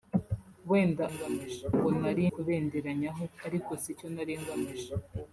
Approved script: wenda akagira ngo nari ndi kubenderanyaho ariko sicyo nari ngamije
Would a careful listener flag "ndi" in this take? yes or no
yes